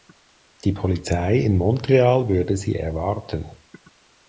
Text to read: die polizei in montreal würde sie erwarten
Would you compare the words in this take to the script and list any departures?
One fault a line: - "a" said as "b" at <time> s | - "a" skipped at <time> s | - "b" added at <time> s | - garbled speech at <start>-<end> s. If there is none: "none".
none